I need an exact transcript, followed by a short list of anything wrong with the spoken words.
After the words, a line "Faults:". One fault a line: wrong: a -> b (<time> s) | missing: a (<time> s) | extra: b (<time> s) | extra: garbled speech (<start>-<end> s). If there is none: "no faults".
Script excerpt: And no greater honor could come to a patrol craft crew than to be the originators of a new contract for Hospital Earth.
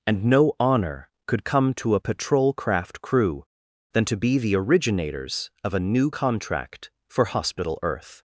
And no honor could come to a patrol craft crew than to be the originators of a new contract for Hospital Earth.
Faults:
missing: greater (0.5 s)